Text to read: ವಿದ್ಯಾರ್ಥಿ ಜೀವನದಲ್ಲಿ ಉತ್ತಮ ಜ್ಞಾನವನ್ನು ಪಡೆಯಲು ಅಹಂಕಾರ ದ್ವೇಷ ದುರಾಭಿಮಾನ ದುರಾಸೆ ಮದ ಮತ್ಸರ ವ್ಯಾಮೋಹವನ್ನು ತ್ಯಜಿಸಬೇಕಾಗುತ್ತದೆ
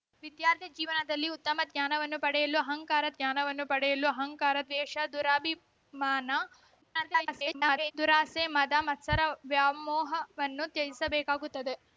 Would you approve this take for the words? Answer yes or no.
no